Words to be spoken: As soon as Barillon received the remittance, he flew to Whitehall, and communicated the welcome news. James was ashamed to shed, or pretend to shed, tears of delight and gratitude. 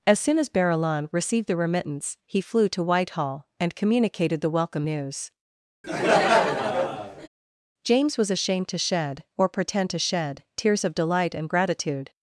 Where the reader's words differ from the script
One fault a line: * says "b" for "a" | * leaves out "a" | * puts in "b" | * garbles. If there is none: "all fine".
all fine